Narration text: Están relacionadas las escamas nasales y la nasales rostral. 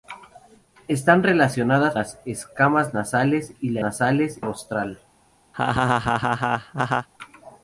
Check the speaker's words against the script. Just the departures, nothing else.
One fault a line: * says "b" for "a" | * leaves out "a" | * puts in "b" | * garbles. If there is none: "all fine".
all fine